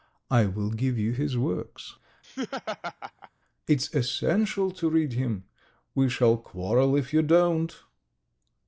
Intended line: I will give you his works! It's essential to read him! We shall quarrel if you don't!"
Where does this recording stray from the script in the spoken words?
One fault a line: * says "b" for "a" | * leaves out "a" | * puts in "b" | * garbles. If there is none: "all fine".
all fine